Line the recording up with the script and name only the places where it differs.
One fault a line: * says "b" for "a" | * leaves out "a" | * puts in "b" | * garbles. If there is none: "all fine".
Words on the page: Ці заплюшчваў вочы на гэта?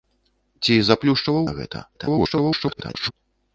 * leaves out "вочы"
* garbles